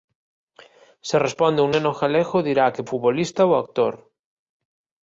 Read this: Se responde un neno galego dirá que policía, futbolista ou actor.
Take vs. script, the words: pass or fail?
fail